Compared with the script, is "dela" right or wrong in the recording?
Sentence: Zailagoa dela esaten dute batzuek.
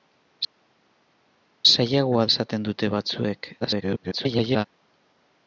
wrong